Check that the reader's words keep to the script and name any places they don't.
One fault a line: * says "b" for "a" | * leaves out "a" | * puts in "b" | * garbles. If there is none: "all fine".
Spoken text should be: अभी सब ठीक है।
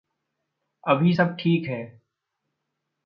all fine